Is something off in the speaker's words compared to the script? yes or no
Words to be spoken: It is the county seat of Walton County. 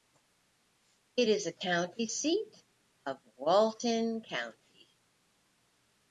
no